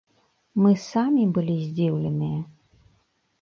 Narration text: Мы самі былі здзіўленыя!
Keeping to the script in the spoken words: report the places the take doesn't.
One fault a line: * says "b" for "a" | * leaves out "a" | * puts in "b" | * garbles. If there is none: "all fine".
all fine